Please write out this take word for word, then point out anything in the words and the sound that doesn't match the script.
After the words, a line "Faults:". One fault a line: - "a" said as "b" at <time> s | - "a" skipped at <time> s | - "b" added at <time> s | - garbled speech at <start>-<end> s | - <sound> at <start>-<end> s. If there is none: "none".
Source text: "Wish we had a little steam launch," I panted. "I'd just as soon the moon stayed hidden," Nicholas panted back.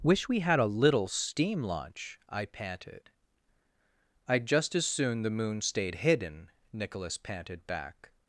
"Wish we had a little steam launch," I panted. "I'd just as soon the moon stayed hidden," Nicholas panted back.
Faults:
none